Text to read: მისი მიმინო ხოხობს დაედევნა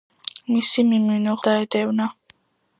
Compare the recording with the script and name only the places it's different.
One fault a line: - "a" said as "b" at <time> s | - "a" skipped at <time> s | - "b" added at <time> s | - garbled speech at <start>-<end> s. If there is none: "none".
- "ხოხობს" skipped at 1.4 s